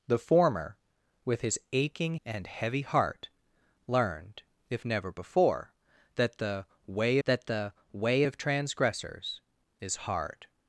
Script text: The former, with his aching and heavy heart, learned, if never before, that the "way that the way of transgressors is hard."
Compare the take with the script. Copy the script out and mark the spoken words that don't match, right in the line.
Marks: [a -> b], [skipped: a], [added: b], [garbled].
The former, with his aching and heavy heart, learned, if never before, that the "way that the way of transgressors is hard."